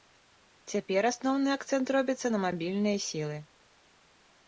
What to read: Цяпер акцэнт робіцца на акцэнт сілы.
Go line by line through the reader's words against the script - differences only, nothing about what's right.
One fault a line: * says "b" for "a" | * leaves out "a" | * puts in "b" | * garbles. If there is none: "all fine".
* puts in "асноўны"
* says "мабільныя" for "акцэнт"